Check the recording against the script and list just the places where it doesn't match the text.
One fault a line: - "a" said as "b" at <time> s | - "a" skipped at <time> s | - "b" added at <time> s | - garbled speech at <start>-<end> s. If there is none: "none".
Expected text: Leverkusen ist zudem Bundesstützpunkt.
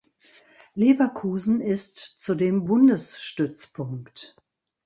none